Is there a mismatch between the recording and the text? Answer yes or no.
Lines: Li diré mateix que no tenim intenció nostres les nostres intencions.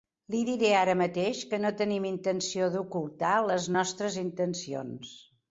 yes